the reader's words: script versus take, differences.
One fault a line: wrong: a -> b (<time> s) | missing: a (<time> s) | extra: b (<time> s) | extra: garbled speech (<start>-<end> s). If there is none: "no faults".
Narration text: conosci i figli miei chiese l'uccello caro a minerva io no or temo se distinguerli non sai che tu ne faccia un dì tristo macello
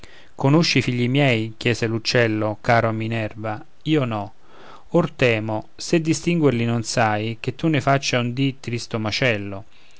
no faults